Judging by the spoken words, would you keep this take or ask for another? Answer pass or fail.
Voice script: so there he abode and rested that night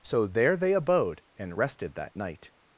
fail